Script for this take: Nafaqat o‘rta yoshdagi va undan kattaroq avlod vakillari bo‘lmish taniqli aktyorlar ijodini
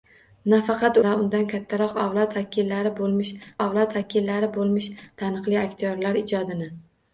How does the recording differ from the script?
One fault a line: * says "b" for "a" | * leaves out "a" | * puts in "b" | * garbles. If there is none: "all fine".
* leaves out "o‘rta yoshdagi"
* puts in "avlod vakillari bo‘lmish"